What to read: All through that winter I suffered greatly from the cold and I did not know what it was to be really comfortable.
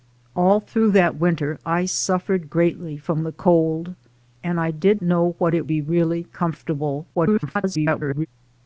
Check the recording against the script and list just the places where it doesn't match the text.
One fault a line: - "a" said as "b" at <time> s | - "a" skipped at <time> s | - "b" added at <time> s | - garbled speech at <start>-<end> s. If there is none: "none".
- "not" skipped at 5.0 s
- "was to" skipped at 5.7 s
- garbled speech at 7.1-8.3 s